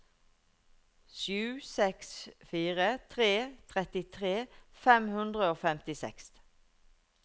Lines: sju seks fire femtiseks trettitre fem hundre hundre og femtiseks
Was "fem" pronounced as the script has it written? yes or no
yes